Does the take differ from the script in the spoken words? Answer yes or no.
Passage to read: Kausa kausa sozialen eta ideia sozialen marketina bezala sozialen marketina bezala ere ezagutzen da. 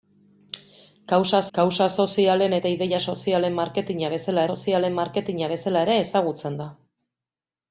no